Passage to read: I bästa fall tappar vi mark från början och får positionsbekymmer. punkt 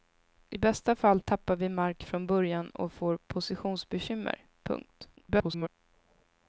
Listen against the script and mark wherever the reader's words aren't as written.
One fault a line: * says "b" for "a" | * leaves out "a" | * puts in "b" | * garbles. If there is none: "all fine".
* garbles